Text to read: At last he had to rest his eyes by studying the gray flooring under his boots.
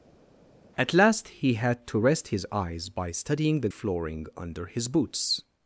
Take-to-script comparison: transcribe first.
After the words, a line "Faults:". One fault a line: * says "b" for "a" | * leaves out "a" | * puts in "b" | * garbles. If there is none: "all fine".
At last he had to rest his eyes by studying the flooring under his boots.
Faults:
* leaves out "gray"